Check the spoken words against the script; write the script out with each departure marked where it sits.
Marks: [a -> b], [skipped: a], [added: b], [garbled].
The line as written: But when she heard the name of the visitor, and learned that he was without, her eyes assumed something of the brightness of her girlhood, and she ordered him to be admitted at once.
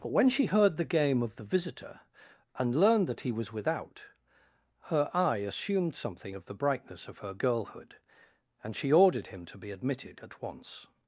But when she heard the [name -> game] of the visitor, and learned that he was without, her [eyes -> eye] assumed something of the brightness of her girlhood, and she ordered him to be admitted at once.